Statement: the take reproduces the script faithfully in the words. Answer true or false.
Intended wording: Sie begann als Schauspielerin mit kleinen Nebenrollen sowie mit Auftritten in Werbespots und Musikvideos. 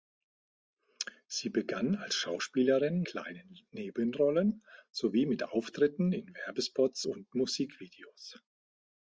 false